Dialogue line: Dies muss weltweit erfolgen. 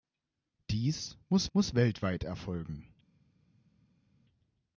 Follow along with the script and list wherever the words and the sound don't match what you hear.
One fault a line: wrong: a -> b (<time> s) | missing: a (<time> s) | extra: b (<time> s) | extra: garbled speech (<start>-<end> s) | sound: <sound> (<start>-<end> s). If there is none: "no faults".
extra: muss (1.5 s)